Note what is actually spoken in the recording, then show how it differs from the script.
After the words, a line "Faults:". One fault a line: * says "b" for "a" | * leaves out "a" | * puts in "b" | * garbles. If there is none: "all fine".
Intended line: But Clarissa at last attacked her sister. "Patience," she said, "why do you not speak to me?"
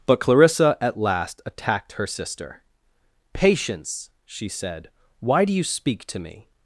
But Clarissa at last attacked her sister. "Patience," she said, "why do you speak to me?"
Faults:
* leaves out "not"